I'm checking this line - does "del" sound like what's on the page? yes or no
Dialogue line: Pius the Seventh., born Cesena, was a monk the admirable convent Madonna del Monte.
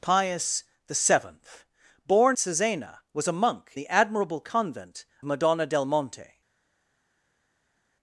yes